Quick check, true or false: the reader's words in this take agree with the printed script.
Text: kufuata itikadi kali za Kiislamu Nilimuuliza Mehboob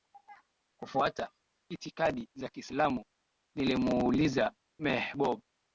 false